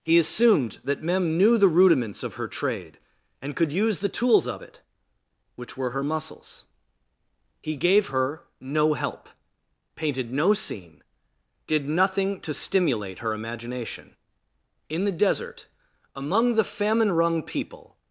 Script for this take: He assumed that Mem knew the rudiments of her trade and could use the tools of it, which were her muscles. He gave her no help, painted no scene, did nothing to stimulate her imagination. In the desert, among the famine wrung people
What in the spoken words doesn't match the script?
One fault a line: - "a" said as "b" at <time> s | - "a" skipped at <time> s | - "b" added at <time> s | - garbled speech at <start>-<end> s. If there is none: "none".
none